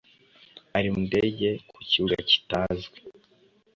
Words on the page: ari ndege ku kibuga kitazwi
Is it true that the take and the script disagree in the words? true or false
false